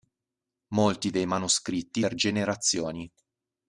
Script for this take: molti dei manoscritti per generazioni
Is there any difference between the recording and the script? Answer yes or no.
no